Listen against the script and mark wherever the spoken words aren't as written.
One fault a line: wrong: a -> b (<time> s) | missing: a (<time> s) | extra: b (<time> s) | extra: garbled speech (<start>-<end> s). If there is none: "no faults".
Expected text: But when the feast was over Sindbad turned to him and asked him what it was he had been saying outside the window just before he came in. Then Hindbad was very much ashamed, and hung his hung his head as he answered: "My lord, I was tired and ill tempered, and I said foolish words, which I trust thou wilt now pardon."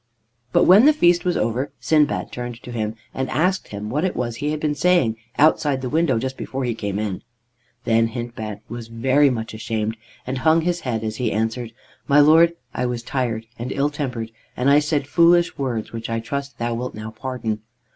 missing: hung his (10.8 s)